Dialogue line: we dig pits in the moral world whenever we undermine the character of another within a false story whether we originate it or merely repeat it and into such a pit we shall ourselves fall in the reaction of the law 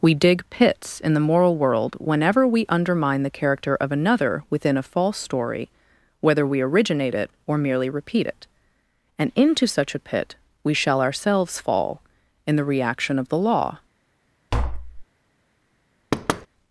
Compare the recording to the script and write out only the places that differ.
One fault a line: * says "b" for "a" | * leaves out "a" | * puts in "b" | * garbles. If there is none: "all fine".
all fine